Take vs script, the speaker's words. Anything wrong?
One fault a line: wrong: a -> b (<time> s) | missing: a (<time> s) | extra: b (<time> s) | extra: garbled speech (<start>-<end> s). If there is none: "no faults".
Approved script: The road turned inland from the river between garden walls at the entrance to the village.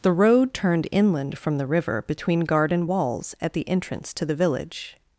no faults